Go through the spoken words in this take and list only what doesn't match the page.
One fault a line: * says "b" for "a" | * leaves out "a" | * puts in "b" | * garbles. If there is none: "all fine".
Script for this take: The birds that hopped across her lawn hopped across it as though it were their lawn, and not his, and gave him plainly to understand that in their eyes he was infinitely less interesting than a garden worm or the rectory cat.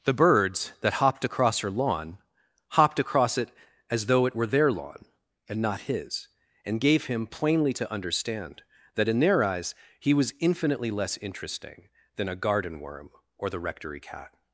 all fine